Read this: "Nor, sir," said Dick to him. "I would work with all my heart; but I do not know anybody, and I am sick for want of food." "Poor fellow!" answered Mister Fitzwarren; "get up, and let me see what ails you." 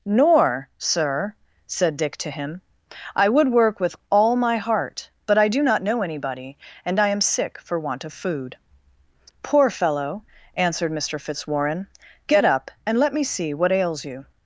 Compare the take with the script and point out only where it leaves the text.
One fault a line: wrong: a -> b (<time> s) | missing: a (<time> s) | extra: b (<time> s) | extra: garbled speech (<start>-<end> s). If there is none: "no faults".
no faults